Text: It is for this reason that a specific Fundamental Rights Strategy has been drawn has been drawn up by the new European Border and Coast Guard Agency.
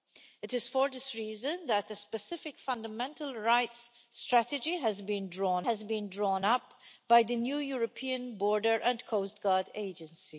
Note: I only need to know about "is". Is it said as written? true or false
true